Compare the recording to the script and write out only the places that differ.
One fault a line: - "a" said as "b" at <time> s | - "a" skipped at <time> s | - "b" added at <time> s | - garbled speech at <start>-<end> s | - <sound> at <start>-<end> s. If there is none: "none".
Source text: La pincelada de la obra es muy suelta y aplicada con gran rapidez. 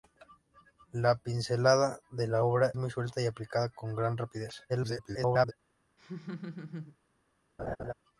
- "es" skipped at 2.7 s
- garbled speech at 4.7-5.5 s
- laugh at 6.0-7.0 s
- laugh at 7.6-7.9 s